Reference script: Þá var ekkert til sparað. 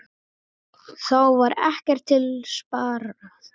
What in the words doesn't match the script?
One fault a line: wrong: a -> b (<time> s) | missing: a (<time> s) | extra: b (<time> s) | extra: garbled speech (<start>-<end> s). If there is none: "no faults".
no faults